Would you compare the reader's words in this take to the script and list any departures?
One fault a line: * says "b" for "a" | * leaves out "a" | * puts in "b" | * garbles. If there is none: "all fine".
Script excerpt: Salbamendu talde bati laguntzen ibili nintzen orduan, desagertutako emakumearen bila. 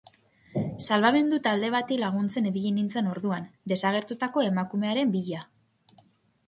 all fine